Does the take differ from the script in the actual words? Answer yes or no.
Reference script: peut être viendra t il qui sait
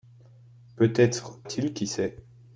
yes